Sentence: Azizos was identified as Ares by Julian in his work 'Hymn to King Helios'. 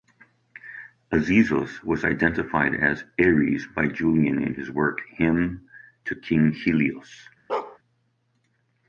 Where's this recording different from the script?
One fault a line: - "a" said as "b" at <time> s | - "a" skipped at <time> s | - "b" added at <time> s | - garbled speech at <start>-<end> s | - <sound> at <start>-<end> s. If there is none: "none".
- bark at 7.5-7.8 s